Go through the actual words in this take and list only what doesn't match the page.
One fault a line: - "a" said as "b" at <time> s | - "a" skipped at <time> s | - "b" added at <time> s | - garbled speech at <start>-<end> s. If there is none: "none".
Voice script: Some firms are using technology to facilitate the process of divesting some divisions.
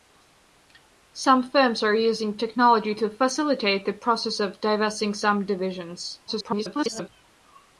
- garbled speech at 6.3-7.1 s